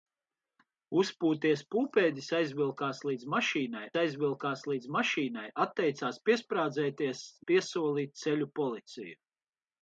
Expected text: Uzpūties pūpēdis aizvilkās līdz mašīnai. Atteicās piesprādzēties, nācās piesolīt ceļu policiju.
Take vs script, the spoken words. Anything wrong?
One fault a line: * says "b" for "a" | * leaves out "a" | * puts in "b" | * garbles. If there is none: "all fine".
* puts in "aizvilkās līdz mašīnai"
* leaves out "nācās"